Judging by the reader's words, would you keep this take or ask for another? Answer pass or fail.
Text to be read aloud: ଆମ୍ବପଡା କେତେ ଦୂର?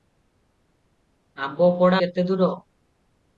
pass